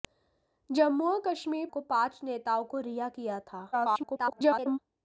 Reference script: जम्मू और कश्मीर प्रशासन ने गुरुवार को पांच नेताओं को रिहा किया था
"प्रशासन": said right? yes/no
no